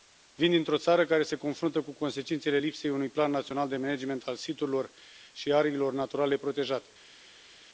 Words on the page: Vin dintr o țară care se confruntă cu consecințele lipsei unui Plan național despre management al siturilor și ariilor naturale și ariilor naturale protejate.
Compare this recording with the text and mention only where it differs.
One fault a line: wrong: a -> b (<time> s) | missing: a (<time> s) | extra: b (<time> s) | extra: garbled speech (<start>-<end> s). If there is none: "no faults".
wrong: despre -> de (3.7 s)
missing: și ariilor naturale (6.4 s)